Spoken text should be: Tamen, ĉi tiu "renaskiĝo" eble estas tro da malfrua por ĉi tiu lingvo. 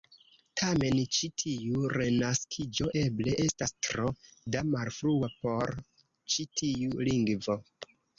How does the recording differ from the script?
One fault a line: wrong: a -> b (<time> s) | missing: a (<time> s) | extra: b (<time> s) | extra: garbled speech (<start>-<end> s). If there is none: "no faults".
no faults